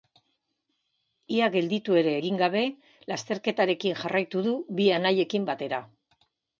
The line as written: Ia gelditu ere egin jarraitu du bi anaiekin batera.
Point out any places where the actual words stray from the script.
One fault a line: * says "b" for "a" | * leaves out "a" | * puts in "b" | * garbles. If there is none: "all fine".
* puts in "gabe lasterketarekin"